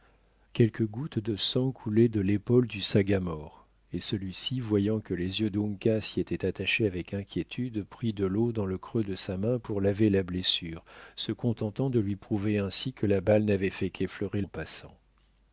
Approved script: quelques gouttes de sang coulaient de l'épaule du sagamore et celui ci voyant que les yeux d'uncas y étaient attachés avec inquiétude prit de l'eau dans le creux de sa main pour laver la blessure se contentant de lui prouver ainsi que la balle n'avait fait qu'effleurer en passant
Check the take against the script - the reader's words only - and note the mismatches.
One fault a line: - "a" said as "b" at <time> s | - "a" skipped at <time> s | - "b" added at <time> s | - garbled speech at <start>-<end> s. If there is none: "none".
none